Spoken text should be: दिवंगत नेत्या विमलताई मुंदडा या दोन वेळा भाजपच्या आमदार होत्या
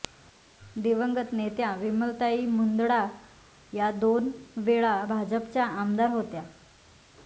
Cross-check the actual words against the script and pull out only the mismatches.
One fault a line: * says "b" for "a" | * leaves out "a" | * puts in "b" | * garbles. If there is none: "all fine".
all fine